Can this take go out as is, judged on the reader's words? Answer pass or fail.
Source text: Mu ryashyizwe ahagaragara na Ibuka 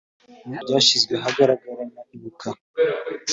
pass